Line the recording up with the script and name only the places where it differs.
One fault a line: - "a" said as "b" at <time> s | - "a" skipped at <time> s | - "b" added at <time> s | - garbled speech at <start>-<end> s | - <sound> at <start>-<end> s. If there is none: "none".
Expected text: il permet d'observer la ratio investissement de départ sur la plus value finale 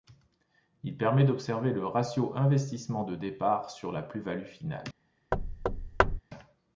- "la" said as "le" at 1.7 s
- thud at 5.3-6.2 s